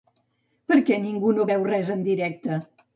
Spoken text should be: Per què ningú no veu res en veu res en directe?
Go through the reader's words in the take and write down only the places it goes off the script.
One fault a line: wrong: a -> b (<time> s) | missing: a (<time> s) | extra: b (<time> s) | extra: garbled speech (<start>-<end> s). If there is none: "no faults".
missing: veu res en (2.1 s)